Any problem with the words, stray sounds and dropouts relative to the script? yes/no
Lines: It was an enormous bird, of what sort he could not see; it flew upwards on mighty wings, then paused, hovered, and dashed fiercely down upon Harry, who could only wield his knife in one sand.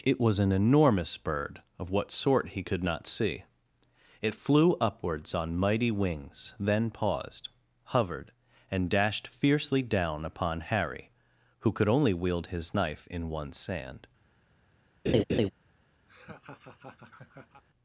yes